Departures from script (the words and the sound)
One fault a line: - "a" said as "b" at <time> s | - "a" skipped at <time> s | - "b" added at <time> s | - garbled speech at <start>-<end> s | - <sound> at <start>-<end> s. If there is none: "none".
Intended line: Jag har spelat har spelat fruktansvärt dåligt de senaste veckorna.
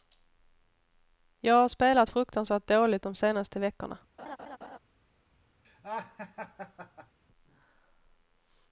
- "har spelat" skipped at 2.1 s
- laugh at 4.2-4.8 s
- laugh at 5.6-7.2 s